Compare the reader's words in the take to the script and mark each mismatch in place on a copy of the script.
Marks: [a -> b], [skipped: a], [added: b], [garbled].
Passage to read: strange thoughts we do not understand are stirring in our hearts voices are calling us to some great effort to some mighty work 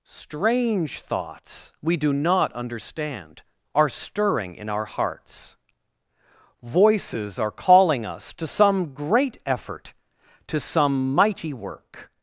strange thoughts we do not understand are stirring in our hearts voices are calling us to some great effort to some mighty work